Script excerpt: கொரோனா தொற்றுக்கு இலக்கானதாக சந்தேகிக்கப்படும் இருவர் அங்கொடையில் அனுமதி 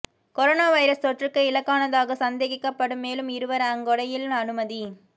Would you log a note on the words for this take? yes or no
yes